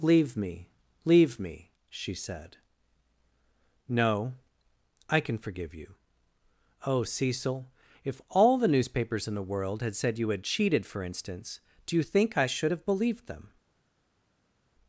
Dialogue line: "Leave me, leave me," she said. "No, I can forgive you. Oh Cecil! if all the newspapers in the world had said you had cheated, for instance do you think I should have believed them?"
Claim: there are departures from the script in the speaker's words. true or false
false